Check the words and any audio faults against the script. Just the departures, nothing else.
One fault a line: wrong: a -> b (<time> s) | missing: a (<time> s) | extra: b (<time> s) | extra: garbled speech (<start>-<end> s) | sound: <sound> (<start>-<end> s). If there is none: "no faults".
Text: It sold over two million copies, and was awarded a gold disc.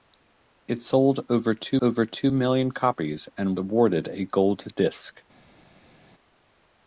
extra: over two (1.8 s)
missing: was (3.6 s)